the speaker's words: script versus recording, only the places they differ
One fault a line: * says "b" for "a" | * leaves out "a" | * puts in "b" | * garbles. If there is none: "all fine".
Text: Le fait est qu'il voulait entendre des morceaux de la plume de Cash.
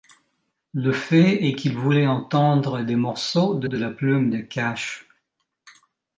* puts in "de"